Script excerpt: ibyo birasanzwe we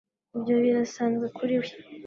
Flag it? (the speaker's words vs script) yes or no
yes